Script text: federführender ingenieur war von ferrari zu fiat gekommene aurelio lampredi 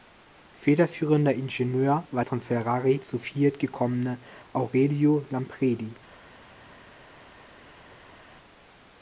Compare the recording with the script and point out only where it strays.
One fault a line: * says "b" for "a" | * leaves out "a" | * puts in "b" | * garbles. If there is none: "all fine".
all fine